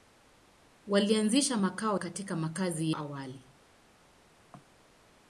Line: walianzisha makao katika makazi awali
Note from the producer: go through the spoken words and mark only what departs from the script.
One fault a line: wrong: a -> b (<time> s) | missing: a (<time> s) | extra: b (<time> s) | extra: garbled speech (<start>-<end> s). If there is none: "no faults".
no faults